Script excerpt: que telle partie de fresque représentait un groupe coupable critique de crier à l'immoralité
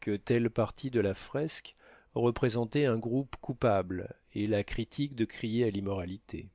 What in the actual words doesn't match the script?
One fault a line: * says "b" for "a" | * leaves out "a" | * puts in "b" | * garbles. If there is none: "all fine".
* puts in "la"
* puts in "et la"